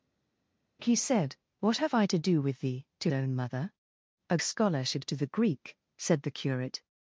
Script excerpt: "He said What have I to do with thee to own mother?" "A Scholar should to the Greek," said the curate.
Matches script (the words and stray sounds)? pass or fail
pass